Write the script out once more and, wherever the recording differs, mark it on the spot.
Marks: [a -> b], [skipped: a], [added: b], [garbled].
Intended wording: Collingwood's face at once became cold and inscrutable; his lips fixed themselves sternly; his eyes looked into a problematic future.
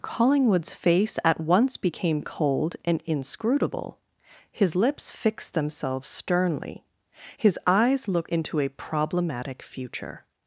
Collingwood's face at once became cold and inscrutable; his lips fixed themselves sternly; his eyes looked into a problematic future.